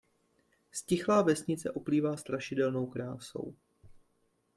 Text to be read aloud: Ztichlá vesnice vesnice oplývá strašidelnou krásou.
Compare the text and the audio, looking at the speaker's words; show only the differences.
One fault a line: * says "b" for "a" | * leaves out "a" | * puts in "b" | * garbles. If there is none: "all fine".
* leaves out "vesnice"